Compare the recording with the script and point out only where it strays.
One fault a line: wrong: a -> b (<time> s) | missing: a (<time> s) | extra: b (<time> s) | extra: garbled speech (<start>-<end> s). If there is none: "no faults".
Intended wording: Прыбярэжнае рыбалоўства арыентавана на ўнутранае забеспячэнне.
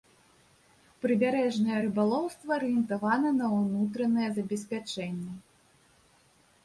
no faults